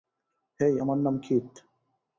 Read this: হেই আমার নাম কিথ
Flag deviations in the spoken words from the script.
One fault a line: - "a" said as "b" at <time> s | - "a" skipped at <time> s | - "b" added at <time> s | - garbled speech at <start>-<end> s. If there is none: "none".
none